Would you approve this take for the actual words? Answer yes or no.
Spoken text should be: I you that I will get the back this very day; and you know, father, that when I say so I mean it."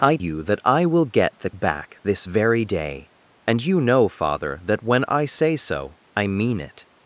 yes